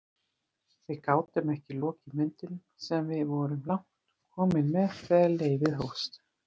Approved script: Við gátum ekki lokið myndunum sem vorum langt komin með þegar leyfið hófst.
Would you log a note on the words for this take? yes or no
yes